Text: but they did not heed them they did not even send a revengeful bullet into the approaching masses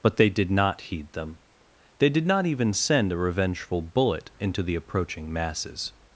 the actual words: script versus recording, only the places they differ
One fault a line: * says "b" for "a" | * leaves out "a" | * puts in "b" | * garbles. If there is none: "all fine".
all fine